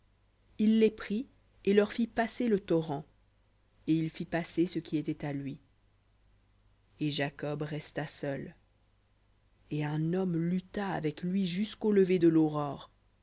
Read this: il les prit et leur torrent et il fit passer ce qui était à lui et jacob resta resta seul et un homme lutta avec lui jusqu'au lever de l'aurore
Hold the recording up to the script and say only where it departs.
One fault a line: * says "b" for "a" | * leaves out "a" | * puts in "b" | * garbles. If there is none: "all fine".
* puts in "fit passer le"
* leaves out "resta"